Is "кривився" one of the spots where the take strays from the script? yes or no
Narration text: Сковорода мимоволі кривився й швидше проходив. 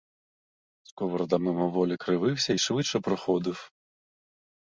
no